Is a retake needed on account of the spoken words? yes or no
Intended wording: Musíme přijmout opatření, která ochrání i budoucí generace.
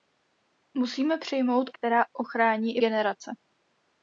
yes